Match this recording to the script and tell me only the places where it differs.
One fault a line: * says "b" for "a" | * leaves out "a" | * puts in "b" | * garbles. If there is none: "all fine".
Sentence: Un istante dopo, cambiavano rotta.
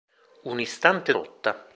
* leaves out "dopo cambiavano"